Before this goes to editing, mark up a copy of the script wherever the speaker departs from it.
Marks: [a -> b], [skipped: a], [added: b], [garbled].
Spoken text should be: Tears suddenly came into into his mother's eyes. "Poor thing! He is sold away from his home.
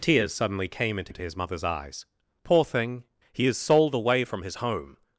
Tears suddenly came into into his mother's eyes. "Poor thing! He is sold away from his home.